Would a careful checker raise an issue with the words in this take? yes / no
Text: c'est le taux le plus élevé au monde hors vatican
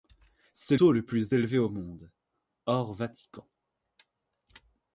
yes